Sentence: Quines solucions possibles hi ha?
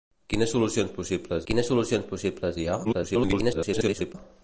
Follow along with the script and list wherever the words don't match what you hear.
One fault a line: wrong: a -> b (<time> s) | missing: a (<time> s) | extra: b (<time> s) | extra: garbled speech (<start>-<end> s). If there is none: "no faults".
extra: quines solucions possibles (1.5 s)
extra: garbled speech (2.8-4.1 s)